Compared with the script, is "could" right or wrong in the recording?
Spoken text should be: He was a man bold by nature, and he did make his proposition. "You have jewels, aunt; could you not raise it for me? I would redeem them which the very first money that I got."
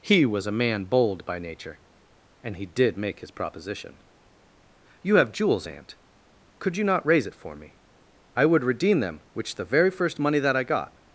right